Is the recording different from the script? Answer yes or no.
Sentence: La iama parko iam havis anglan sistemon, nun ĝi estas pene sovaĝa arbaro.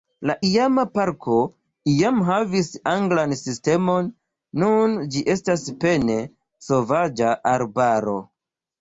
no